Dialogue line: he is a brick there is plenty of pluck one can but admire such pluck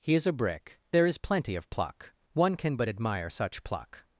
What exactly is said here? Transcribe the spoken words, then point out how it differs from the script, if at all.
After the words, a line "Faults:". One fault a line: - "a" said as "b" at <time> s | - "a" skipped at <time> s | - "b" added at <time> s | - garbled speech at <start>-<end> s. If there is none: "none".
he is a brick there is plenty of pluck one can but admire such pluck
Faults:
none